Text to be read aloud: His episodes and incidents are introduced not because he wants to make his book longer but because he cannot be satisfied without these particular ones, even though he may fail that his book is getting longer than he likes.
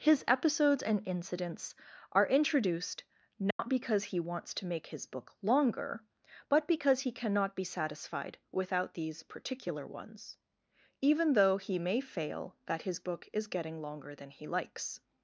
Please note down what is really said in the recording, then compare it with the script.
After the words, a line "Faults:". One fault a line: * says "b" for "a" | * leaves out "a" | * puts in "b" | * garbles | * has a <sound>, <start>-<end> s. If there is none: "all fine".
His episodes and incidents are introduced not because he wants to make his book longer but because he cannot be satisfied without these particular ones, even though he may fail that his book is getting longer than he likes.
Faults:
* has a dropout, 3.5-3.6 s